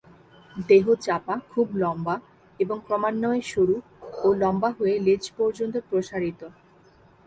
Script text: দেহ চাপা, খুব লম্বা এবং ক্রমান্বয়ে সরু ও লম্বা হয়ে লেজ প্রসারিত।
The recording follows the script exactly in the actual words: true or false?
false